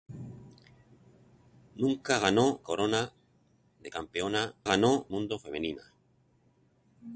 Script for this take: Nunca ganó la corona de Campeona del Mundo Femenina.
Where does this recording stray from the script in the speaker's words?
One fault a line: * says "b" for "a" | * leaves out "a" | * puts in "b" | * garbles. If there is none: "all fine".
* leaves out "la"
* says "ganó" for "del"